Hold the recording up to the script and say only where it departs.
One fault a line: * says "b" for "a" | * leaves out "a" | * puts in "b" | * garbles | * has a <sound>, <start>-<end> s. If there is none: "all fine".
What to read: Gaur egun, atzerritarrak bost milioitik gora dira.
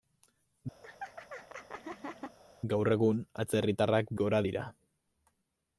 * has a laugh, 0.8-2.4 s
* leaves out "bost milioitik"